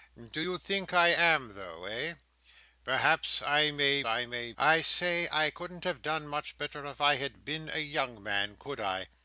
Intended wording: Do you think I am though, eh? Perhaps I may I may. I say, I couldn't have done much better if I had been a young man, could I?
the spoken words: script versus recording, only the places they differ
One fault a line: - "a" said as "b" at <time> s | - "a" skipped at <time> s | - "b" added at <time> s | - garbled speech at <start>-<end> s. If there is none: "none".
none